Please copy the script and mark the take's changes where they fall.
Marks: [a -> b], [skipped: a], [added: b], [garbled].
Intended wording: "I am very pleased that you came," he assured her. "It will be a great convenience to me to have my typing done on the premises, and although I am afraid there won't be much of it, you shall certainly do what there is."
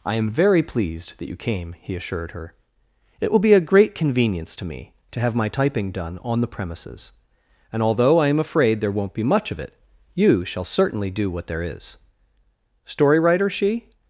"I am very pleased that you came," he assured her. "It will be a great convenience to me to have my typing done on the premises, and although I am afraid there won't be much of it, you shall certainly do what there is." [added: Story writer she]